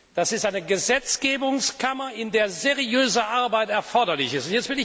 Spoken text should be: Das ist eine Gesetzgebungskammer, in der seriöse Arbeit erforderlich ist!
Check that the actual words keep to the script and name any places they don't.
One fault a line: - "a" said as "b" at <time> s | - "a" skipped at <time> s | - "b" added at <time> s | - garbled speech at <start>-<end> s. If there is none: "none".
none